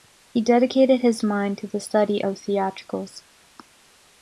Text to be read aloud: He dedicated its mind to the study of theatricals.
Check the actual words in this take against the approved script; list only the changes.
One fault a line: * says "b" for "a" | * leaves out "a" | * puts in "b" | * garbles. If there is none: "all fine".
* says "his" for "its"